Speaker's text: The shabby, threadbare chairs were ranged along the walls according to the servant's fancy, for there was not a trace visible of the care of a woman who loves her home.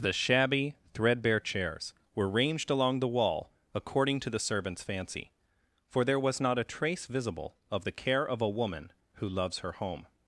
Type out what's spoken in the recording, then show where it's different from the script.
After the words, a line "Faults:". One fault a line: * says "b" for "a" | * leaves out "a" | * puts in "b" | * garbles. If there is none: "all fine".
The shabby, threadbare chairs were ranged along the wall according to the servant's fancy, for there was not a trace visible of the care of a woman who loves her home.
Faults:
* says "wall" for "walls"